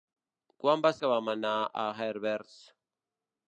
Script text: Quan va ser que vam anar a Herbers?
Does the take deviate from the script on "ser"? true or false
true